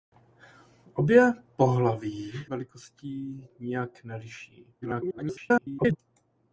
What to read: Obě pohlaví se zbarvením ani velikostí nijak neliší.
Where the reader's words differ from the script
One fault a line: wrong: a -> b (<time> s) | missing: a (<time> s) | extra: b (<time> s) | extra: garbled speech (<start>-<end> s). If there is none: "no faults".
missing: se zbarvením ani (2.3 s)
extra: garbled speech (4.8-6.0 s)